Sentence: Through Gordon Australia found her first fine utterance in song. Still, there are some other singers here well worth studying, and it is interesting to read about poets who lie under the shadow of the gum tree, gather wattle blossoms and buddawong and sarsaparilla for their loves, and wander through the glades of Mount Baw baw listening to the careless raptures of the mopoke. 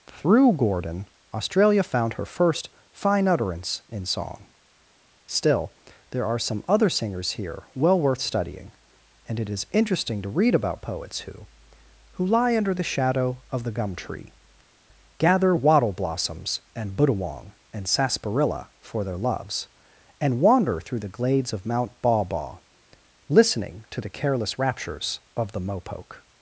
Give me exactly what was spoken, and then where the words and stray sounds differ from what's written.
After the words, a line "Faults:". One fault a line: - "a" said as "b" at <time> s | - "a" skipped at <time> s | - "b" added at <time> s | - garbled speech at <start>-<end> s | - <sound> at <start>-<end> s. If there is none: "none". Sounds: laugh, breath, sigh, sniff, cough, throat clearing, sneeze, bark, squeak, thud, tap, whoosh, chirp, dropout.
Through Gordon Australia found her first fine utterance in song. Still, there are some other singers here well worth studying, and it is interesting to read about poets who who lie under the shadow of the gum tree, gather wattle blossoms and buddawong and sarsaparilla for their loves, and wander through the glades of Mount Baw baw listening to the careless raptures of the mopoke.
Faults:
- "who" added at 12.2 s